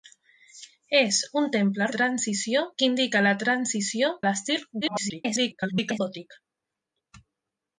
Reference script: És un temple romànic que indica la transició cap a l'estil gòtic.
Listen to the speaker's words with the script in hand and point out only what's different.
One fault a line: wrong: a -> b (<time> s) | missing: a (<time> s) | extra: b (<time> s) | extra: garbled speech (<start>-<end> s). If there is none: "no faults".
wrong: romànic -> transició (2.0 s)
missing: cap (4.1 s)
extra: garbled speech (4.8-6.0 s)